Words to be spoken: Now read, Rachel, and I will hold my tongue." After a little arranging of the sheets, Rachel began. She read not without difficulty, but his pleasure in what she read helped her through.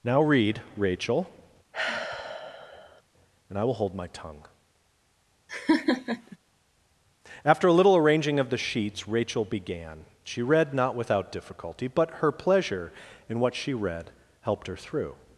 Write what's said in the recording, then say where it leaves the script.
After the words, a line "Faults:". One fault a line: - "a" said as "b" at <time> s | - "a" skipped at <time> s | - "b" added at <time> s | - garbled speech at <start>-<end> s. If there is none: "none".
Now read, Rachel, and I will hold my tongue." After a little arranging of the sheets, Rachel began. She read not without difficulty, but her pleasure in what she read helped her through.
Faults:
- "his" said as "her" at 12.2 s